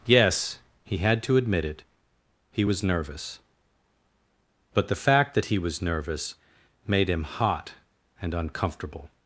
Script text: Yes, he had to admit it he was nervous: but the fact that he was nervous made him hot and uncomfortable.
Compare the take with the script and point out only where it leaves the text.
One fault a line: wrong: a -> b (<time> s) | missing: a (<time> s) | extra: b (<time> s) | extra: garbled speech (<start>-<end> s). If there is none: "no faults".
no faults